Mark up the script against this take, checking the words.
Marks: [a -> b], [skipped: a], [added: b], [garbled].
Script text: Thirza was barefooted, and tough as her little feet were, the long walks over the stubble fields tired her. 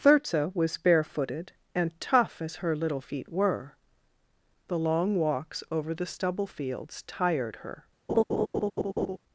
Thirza was barefooted, and tough as her little feet were, the long walks over the stubble fields tired her.